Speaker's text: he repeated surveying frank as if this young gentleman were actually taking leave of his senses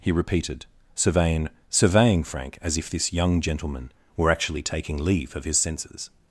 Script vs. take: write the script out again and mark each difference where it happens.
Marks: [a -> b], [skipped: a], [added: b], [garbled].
he repeated surveying [added: surveying] frank as if this young gentleman were actually taking leave of his senses